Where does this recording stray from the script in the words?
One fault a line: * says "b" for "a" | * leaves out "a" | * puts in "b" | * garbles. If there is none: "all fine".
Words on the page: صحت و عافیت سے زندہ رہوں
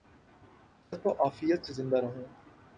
all fine